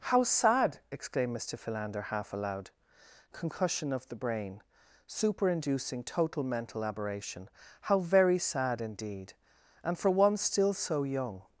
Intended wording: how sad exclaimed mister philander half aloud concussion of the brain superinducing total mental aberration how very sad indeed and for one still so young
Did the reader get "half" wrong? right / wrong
right